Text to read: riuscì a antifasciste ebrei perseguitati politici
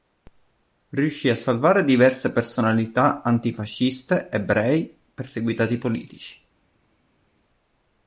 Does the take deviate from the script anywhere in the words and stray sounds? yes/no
yes